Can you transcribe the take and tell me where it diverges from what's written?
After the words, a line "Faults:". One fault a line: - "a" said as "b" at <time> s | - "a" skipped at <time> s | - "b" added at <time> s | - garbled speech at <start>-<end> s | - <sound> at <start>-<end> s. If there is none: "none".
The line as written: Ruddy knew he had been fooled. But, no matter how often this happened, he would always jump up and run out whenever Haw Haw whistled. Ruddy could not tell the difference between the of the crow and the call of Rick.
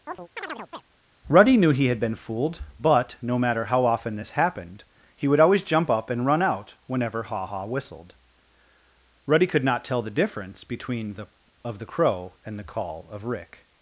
Ruddy knew he had been fooled. But, no matter how often this happened, he would always jump up and run out whenever Haw Haw whistled. Ruddy could not tell the difference between the of the crow and the call of Rick.
Faults:
- chirp at 0.1-0.8 s